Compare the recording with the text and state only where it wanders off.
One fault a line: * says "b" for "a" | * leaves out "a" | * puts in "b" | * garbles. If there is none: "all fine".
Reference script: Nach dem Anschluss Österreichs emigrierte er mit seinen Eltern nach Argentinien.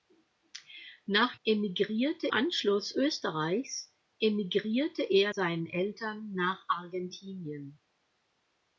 * says "emigrierte" for "dem"
* leaves out "mit"